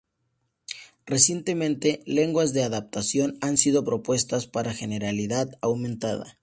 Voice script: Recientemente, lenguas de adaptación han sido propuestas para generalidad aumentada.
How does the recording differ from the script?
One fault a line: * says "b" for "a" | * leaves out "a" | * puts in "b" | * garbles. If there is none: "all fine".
all fine